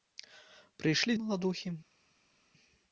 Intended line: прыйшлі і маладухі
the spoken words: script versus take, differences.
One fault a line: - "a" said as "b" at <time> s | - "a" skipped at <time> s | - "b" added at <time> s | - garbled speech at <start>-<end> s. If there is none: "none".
none